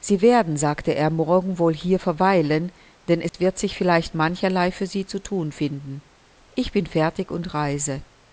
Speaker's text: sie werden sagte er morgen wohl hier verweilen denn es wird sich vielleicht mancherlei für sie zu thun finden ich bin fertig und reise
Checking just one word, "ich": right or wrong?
right